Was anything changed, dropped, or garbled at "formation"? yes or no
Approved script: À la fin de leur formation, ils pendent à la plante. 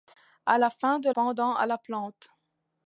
yes